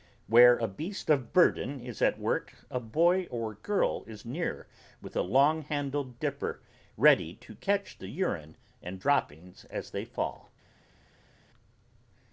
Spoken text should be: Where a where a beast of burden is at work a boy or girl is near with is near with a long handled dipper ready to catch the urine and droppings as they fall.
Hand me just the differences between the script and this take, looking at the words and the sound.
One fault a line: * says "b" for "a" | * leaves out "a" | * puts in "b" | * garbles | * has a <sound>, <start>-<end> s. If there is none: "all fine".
* leaves out "where a"
* leaves out "is near with"